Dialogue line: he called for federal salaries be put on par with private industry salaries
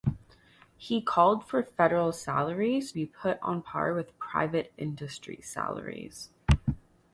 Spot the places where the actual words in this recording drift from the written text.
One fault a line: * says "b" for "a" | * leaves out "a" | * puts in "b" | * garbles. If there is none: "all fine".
all fine